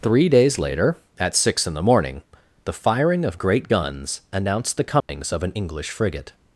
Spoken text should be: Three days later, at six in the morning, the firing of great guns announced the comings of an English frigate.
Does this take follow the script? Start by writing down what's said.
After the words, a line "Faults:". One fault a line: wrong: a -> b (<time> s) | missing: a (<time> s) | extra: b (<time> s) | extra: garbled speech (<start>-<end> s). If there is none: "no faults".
Three days later, at six in the morning, the firing of great guns announced the comings of an English frigate.
Faults:
no faults